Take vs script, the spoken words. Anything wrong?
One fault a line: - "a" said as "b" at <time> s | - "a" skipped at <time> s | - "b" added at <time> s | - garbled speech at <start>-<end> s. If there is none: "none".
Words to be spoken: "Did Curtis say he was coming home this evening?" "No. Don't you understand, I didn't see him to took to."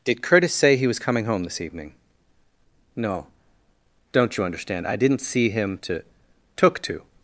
none